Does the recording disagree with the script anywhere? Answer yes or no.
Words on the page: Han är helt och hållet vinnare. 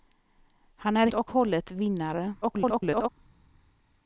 yes